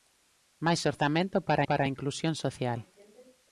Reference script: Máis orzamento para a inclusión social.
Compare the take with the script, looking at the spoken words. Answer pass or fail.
fail